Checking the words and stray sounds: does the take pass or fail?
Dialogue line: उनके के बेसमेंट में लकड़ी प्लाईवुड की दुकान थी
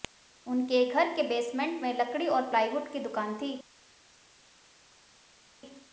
fail